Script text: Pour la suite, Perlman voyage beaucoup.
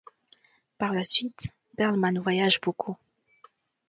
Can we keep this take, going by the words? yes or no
no